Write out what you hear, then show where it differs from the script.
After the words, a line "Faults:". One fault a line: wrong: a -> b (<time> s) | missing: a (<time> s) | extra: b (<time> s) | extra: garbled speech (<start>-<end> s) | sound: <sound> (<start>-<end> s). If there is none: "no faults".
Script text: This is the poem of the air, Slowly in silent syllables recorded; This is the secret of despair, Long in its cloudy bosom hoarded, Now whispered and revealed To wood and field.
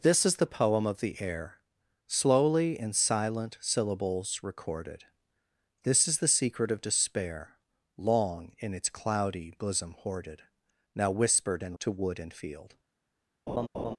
This is the poem of the air, Slowly in silent syllables recorded; This is the secret of despair, Long in its cloudy bosom hoarded, Now whispered and To wood and field.
Faults:
missing: revealed (11.8 s)
sound: laugh (13.5-14.0 s)